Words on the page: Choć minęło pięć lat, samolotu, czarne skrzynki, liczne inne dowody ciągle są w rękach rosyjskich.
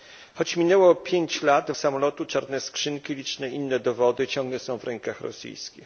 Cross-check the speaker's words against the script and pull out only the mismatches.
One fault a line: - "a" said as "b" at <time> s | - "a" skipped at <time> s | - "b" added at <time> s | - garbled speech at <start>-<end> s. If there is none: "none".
none